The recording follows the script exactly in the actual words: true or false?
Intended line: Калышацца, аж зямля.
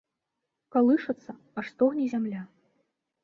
false